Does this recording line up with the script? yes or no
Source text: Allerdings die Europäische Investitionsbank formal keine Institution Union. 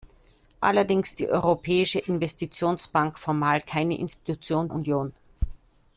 yes